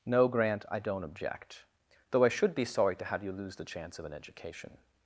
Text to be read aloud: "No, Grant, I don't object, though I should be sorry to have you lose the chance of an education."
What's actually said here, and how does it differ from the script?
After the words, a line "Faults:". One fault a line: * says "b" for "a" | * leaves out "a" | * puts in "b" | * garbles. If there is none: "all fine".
"No, Grant, I don't object, though I should be sorry to have you lose the chance of an education."
Faults:
all fine